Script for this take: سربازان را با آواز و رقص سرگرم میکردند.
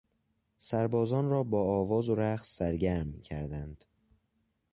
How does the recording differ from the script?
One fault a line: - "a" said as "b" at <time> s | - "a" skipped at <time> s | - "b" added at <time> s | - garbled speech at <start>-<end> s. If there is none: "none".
none